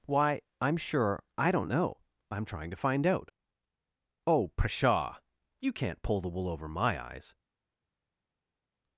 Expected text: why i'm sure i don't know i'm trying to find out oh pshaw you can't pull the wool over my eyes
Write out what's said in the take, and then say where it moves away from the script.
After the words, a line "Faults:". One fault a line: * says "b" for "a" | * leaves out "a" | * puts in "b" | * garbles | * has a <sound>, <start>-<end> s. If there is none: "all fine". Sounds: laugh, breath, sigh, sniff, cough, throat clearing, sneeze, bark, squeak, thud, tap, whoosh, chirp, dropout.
why i'm sure i don't know i'm trying to find out oh pshaw you can't pull the wool over my eyes
Faults:
all fine